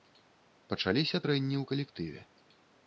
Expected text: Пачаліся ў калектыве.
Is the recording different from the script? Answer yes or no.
yes